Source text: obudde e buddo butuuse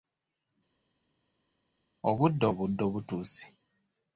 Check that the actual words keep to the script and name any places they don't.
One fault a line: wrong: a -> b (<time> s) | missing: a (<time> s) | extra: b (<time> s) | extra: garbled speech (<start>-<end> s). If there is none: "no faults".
no faults